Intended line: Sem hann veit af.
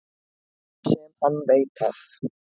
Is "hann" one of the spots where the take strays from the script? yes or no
no